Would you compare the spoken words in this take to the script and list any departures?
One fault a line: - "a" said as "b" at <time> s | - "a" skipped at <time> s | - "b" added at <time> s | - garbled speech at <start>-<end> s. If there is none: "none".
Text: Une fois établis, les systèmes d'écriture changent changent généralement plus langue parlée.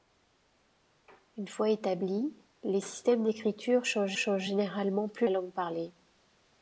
none